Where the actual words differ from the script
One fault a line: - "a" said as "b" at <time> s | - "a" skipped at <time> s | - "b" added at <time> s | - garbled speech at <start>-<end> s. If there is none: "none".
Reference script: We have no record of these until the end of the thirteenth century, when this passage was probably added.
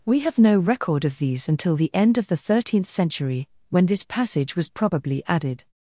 none